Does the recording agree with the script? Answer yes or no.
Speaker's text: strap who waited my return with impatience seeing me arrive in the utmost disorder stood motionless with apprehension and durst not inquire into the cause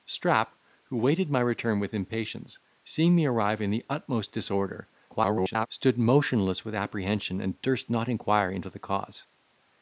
no